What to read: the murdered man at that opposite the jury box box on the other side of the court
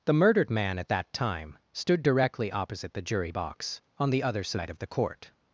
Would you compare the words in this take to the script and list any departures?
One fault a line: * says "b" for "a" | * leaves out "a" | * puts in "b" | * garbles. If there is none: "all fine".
* puts in "time stood directly"
* leaves out "box"